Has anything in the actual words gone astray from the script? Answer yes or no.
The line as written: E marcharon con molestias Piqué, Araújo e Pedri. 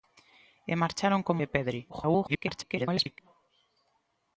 yes